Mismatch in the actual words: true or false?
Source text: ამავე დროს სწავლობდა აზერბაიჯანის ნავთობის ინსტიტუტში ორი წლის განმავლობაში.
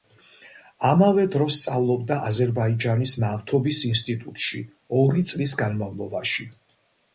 false